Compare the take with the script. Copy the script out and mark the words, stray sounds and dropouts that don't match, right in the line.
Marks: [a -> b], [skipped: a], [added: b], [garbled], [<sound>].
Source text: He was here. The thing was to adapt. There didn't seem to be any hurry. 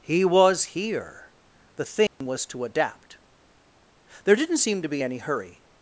He was here. The thing [dropout] was to adapt. There didn't seem to be any hurry.